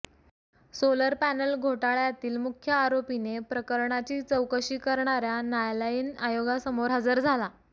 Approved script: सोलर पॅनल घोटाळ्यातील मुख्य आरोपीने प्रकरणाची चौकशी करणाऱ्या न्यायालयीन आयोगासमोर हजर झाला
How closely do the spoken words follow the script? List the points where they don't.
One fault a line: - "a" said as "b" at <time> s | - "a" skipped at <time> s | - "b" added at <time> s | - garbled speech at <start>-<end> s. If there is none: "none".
none